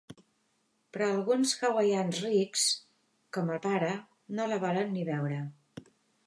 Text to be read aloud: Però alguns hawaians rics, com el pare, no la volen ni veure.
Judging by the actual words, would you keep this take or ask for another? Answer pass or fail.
pass